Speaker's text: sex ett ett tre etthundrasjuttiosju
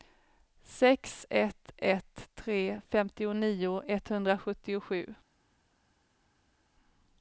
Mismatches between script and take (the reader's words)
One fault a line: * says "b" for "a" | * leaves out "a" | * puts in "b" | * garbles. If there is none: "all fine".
* puts in "femtionio"